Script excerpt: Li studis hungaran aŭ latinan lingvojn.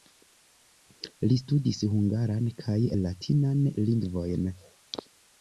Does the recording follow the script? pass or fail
fail